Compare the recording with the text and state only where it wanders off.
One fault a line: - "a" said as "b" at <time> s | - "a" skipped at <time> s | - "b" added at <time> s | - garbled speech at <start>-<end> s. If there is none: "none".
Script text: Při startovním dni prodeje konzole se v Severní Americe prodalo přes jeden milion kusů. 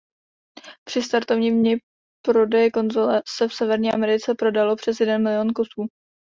none